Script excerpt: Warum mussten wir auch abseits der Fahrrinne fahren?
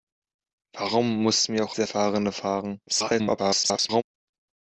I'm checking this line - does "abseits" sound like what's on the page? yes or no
no